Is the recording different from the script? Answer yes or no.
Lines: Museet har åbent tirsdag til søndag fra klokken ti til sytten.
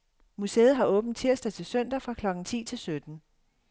no